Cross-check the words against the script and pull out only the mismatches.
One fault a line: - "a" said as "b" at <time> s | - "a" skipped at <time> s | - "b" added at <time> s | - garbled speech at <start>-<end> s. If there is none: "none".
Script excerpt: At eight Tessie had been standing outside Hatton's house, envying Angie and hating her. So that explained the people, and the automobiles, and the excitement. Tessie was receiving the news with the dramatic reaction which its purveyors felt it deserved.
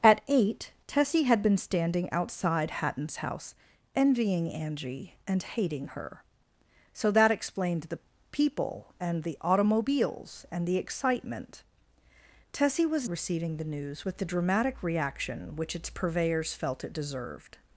none